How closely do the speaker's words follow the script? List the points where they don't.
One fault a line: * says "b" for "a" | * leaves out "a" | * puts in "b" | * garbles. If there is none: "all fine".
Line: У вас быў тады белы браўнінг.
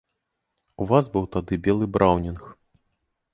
all fine